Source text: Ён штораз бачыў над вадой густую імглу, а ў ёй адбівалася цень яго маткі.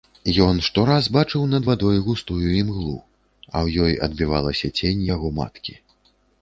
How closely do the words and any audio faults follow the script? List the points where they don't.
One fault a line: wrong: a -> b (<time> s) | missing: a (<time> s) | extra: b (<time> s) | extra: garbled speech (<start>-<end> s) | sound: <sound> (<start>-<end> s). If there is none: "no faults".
no faults